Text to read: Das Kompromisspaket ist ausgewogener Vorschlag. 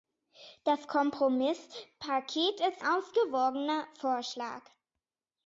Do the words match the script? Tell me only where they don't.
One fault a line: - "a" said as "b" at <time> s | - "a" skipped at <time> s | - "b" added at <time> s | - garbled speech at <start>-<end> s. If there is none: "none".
none